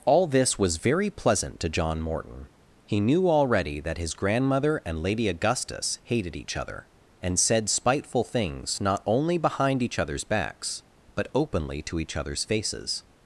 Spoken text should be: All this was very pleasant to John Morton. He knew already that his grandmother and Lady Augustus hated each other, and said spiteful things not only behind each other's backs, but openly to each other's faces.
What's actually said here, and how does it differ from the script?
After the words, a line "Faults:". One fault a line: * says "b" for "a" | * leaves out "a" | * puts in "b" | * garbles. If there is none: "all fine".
All this was very pleasant to John Morton. He knew already that his grandmother and Lady Augustus hated each other, and said spiteful things not only behind each other's backs, but openly to each other's faces.
Faults:
all fine